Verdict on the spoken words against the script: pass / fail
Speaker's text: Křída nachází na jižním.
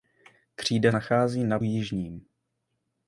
pass